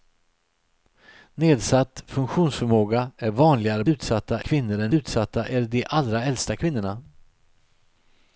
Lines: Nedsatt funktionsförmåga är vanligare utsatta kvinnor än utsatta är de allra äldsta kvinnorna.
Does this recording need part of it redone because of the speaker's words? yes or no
no